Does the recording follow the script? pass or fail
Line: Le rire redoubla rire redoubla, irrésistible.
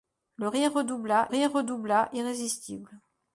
pass